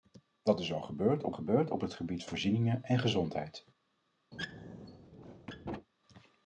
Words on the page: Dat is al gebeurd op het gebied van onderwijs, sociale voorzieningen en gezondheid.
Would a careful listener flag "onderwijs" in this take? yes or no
yes